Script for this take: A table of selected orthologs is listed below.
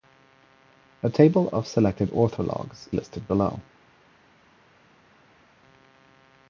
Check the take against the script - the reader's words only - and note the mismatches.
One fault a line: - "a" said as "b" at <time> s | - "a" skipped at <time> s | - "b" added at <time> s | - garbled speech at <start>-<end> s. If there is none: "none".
- "is" skipped at 2.9 s